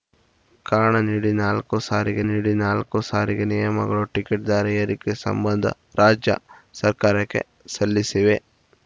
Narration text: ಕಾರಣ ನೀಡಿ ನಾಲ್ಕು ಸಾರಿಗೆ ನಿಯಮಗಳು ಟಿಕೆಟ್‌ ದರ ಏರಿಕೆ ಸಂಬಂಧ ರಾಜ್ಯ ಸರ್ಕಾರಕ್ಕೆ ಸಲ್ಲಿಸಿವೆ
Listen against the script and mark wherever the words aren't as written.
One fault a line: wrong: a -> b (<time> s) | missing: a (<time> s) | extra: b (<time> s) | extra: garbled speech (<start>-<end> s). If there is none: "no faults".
extra: ನೀಡಿ ನಾಲ್ಕು ಸಾರಿಗೆ (2.3 s)